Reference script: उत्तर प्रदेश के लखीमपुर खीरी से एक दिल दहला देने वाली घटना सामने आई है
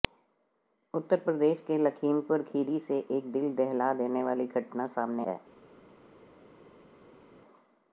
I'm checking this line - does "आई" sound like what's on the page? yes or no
no